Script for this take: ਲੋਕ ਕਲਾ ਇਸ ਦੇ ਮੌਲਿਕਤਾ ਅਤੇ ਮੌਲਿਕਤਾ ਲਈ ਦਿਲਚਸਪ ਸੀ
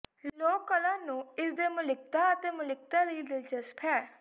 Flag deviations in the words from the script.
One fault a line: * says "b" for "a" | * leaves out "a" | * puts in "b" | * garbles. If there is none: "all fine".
* puts in "ਨੂੰ"
* says "ਹੈ" for "ਸੀ"